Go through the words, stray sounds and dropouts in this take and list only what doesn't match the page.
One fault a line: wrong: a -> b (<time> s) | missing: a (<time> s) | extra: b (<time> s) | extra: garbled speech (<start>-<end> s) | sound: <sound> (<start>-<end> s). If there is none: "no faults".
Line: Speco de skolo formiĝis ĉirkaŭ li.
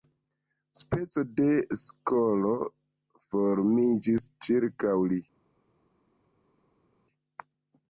no faults